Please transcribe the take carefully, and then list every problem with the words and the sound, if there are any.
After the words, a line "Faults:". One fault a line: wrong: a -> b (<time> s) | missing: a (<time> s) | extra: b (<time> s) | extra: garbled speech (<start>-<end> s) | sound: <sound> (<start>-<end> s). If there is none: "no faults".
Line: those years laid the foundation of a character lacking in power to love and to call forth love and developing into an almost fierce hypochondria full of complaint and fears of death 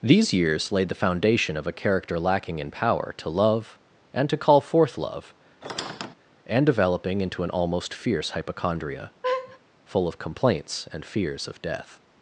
these years laid the foundation of a character lacking in power to love and to call forth love and developing into an almost fierce hypochondria full of complaints and fears of death
Faults:
wrong: those -> these (0.0 s)
sound: squeak (5.6-6.2 s)
sound: laugh (9.2-9.6 s)
wrong: complaint -> complaints (10.2 s)